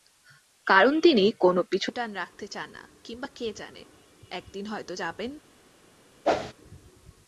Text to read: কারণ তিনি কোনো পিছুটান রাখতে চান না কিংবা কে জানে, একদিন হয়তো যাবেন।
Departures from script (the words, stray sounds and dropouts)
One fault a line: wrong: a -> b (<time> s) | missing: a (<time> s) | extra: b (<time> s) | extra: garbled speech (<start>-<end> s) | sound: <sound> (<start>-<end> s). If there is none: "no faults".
sound: whoosh (6.2-6.5 s)